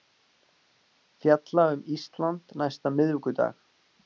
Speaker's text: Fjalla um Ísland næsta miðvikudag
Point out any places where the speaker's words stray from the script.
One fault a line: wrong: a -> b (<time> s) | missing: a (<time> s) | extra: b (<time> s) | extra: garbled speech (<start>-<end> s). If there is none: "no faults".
no faults